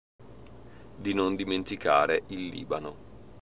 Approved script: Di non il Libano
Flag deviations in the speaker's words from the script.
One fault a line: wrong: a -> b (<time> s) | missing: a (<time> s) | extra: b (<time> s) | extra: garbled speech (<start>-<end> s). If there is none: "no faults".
extra: dimenticare (1.4 s)